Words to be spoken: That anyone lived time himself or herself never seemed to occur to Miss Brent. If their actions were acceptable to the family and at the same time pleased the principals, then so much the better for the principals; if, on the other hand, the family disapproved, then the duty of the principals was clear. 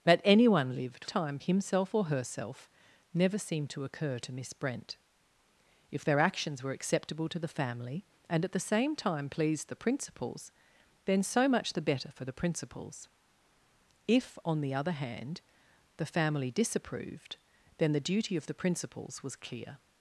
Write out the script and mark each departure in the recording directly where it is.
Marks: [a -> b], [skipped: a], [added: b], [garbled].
That anyone lived time himself or herself never seemed to occur to Miss Brent. If their actions were acceptable to the family and at the same time pleased the principals, then so much the better for the principals; if, on the other hand, the family disapproved, then the duty of the principals was clear.